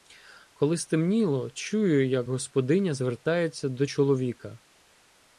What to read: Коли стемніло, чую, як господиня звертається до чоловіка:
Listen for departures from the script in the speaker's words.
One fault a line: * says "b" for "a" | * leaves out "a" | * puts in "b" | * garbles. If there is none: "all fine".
all fine